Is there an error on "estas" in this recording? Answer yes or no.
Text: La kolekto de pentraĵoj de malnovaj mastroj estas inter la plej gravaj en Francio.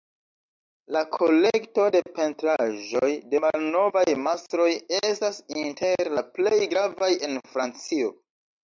no